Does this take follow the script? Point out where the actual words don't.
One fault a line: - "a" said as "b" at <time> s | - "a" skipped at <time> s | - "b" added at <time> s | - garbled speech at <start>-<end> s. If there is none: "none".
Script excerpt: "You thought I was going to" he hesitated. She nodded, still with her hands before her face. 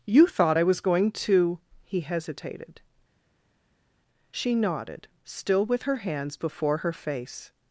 none